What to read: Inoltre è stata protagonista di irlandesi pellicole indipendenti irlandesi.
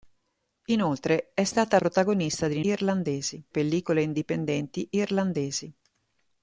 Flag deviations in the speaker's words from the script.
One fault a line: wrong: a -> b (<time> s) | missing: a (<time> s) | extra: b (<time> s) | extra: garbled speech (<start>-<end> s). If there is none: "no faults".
no faults